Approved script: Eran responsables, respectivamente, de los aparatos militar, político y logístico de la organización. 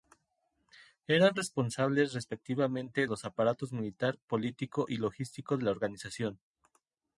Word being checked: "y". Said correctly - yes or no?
yes